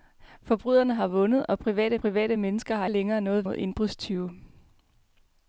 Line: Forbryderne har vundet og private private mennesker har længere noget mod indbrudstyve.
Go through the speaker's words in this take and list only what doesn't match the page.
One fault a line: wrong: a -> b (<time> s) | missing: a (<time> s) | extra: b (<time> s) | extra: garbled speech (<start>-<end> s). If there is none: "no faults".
no faults